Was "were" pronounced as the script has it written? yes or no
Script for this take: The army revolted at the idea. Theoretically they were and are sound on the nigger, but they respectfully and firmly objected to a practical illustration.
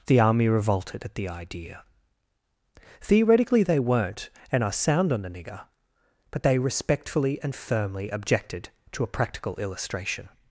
no